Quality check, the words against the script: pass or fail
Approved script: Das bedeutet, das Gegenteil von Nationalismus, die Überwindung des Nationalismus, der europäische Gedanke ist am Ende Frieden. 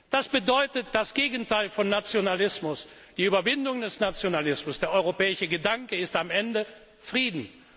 pass